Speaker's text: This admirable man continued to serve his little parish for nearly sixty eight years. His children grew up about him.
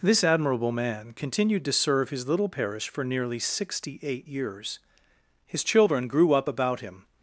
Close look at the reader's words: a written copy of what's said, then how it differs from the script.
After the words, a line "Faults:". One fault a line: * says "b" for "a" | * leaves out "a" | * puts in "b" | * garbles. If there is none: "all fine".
This admirable man continued to serve his little parish for nearly sixty eight years. His children grew up about him.
Faults:
all fine